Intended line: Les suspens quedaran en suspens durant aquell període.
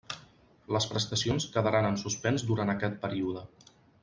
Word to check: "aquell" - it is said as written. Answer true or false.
false